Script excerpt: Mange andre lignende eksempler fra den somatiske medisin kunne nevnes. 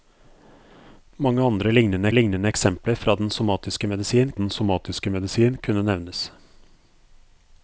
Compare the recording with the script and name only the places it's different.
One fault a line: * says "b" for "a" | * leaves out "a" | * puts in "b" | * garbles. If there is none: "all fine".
* puts in "lignende"
* puts in "den somatiske medisin"